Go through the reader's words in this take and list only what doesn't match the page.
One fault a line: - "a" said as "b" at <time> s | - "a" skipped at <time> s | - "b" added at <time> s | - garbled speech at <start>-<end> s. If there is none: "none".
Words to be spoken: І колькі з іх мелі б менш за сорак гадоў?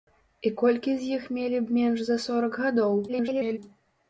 - garbled speech at 3.1-3.6 s